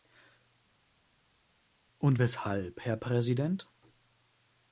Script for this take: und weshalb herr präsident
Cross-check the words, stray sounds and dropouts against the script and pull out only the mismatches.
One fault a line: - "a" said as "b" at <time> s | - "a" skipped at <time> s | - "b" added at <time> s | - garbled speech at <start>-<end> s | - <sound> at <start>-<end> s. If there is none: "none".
none